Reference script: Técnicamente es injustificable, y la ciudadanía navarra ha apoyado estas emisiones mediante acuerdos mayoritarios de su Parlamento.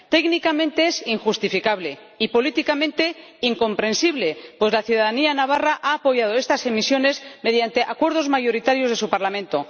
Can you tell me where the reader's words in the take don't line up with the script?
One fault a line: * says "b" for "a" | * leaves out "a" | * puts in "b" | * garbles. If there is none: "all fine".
* puts in "políticamente incomprensible pues"